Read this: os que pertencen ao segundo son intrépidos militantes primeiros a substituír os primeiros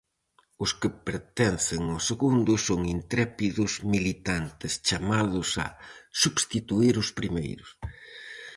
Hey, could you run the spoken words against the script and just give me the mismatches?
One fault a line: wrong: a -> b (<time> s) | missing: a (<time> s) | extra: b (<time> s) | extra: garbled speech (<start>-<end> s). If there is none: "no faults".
wrong: primeiros -> chamados (4.9 s)